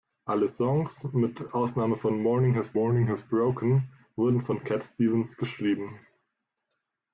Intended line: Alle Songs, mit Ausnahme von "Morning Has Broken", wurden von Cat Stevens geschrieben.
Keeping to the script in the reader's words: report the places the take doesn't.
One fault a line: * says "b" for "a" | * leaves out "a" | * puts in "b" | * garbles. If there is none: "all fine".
* puts in "morning Has"